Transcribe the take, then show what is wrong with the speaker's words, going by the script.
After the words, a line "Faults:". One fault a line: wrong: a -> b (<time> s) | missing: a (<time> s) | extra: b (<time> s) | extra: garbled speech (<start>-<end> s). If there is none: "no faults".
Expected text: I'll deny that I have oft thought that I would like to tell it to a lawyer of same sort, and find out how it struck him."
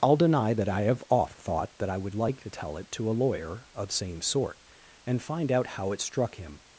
I'll deny that I have oft thought that I would like to tell it to a lawyer of same sort, and find out how it struck him."
Faults:
no faults